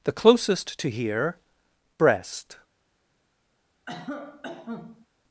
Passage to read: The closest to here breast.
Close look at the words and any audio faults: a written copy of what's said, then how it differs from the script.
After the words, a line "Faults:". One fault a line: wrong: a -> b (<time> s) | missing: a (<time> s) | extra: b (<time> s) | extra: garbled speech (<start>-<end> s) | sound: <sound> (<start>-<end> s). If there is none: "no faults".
The closest to here breast.
Faults:
sound: cough (3.9-5.1 s)